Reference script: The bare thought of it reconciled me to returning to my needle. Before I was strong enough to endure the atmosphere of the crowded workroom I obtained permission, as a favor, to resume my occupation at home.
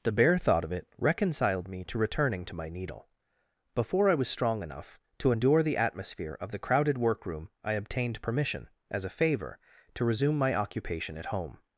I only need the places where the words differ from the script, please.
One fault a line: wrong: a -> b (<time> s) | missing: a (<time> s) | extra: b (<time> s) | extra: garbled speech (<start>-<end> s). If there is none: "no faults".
no faults